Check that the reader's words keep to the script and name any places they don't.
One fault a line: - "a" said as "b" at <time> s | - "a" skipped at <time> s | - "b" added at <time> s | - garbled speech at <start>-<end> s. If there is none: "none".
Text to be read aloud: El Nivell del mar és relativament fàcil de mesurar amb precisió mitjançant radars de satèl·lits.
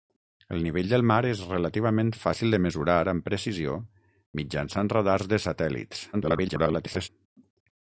- garbled speech at 6.1-7.1 s